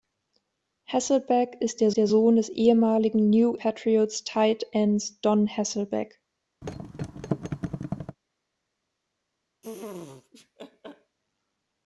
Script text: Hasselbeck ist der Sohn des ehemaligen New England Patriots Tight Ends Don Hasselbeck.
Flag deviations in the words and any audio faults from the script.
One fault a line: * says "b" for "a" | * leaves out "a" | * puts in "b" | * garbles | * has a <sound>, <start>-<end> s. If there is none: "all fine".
* puts in "der"
* leaves out "England"
* has a thud, 6.6-8.2 s
* has a laugh, 9.6-11.2 s